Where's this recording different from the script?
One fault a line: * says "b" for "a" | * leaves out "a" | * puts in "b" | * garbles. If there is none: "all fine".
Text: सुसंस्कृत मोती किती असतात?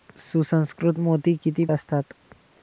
all fine